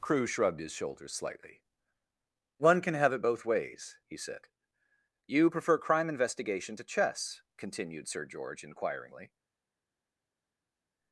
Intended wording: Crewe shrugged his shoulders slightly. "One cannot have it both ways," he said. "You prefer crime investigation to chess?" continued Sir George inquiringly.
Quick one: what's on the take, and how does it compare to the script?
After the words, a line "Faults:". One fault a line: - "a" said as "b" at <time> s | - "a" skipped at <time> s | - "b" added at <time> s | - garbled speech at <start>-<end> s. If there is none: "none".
Crewe shrugged his shoulders slightly. "One can have it both ways," he said. "You prefer crime investigation to chess?" continued Sir George inquiringly.
Faults:
- "cannot" said as "can" at 2.8 s